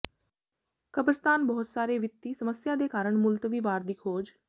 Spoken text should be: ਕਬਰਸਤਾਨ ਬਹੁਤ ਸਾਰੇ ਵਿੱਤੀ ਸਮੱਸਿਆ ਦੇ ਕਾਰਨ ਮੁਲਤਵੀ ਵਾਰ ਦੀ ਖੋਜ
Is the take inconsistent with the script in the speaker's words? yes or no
no